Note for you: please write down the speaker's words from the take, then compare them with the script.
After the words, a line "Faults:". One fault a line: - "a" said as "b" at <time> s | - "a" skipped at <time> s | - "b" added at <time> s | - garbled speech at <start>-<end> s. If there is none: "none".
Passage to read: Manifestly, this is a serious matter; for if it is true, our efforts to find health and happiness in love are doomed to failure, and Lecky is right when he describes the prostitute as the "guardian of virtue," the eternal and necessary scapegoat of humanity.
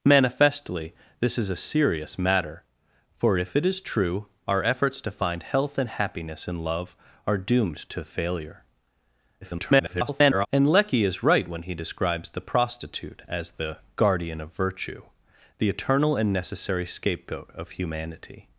Manifestly, this is a serious matter; for if it is true, our efforts to find health and happiness in love are doomed to failure, [garbled] and Lecky is right when he describes the prostitute as the "guardian of virtue," the eternal and necessary scapegoat of humanity.
Faults:
- garbled speech at 9.4-10.5 s